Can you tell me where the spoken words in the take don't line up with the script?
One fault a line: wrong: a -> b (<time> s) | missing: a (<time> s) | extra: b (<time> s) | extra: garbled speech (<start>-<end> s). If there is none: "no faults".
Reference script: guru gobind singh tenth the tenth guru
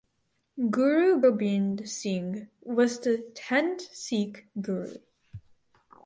wrong: tenth -> was (2.6 s)
extra: sikh (3.9 s)